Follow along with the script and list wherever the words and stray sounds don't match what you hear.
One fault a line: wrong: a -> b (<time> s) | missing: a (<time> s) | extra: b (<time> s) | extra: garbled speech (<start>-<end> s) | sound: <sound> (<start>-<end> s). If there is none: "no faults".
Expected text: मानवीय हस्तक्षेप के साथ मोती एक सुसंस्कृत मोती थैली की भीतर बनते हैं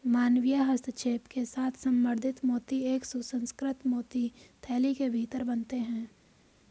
extra: संवर्धित (1.7 s)
wrong: की -> के (4.9 s)